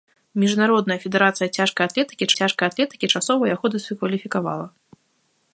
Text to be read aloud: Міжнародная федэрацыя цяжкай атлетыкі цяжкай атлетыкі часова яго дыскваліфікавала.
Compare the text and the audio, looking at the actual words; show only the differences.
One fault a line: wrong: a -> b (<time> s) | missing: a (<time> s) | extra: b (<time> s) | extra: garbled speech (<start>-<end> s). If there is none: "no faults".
no faults